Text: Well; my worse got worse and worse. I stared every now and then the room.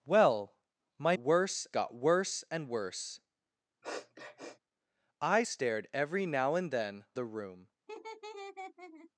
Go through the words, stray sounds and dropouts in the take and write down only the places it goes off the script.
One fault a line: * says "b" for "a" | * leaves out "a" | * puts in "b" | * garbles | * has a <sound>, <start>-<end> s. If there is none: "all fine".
* has a sniff, 3.8-4.6 s
* has a laugh, 7.9-9.1 s